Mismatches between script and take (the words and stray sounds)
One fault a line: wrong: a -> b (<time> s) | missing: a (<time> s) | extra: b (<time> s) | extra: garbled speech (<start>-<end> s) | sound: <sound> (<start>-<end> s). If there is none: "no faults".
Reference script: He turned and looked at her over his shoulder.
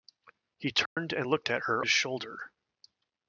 sound: dropout (0.9-1.0 s)
missing: over (1.8 s)